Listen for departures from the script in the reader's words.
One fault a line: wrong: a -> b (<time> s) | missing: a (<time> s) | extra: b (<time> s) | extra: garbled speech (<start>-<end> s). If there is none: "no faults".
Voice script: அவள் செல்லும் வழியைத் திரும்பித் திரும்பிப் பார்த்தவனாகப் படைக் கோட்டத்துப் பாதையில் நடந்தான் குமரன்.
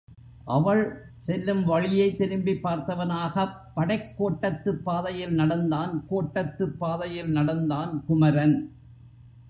missing: திரும்பித் (2.2 s)
extra: கோட்டத்துப் பாதையில் நடந்தான் (6.1 s)